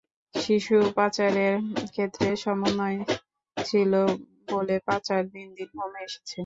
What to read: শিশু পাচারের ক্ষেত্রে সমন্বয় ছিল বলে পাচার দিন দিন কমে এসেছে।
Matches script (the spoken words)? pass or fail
pass